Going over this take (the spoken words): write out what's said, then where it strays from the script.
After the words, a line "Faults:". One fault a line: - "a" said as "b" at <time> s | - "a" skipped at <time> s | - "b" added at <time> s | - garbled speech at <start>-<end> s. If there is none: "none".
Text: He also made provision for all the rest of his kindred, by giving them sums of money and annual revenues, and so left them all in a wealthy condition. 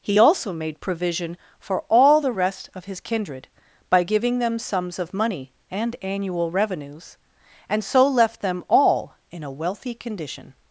He also made provision for all the rest of his kindred, by giving them sums of money and annual revenues, and so left them all in a wealthy condition.
Faults:
none